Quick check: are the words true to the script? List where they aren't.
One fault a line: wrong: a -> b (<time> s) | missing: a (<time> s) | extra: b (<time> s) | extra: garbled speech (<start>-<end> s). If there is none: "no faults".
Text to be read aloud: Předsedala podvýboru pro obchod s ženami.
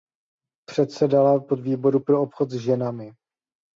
no faults